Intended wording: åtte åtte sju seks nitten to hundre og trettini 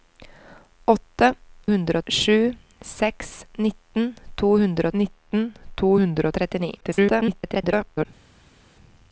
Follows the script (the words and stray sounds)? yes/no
no